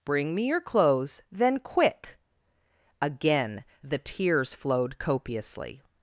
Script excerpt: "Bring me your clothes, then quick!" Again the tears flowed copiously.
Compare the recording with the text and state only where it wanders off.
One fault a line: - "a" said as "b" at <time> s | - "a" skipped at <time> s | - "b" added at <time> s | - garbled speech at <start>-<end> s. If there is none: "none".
none